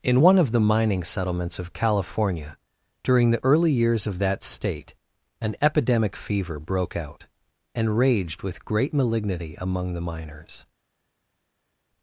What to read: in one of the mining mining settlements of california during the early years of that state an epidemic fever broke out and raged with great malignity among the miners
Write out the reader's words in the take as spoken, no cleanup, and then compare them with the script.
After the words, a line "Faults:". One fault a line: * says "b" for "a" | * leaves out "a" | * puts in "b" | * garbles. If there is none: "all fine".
in one of the mining settlements of california during the early years of that state an epidemic fever broke out and raged with great malignity among the miners
Faults:
* leaves out "mining"